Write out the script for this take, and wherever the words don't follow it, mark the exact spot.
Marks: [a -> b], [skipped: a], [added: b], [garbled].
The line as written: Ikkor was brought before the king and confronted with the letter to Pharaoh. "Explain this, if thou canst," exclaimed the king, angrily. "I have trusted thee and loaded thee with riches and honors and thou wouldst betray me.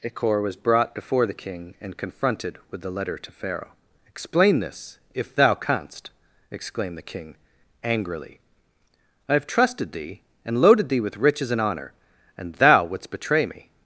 Ikkor was brought before the king and confronted with the letter to Pharaoh. "Explain this, if thou canst," exclaimed the king, angrily. "I have trusted thee and loaded thee with riches and [honors -> honor] and thou wouldst betray me.